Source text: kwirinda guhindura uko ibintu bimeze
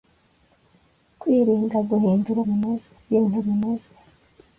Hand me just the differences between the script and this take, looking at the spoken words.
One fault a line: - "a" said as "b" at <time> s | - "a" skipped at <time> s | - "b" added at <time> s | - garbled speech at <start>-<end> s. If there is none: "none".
- "uko" said as "bimeze" at 2.5 s